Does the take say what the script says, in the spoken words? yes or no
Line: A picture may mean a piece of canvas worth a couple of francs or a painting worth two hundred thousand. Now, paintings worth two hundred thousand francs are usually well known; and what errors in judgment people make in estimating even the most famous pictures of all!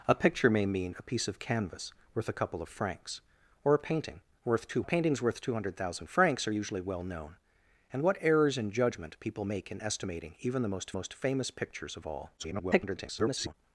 no